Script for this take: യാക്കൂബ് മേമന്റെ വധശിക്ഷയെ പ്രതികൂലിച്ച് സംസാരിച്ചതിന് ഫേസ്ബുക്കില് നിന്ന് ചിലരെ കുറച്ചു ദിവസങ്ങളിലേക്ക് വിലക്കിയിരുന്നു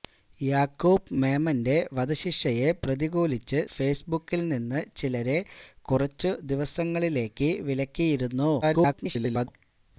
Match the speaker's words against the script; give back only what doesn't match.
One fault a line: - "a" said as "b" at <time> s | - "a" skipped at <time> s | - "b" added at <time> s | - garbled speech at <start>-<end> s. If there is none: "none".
- "സംസാരിച്ചതിന്" skipped at 3.6 s
- garbled speech at 8.6-9.5 s